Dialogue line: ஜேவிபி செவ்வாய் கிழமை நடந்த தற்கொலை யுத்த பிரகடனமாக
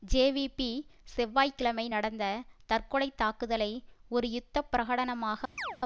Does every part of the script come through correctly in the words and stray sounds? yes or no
no